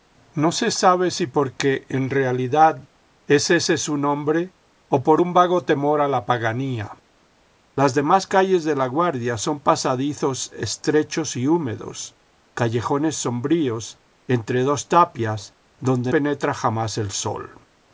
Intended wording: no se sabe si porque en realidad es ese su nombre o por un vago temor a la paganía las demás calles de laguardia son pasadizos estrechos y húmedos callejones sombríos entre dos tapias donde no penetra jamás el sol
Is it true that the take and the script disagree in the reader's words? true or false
true